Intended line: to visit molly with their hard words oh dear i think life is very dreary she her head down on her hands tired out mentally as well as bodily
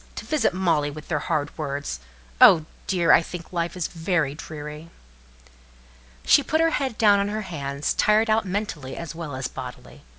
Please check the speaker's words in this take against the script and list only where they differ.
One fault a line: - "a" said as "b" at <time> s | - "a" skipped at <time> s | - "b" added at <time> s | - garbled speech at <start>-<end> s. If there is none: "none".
- "put" added at 6.4 s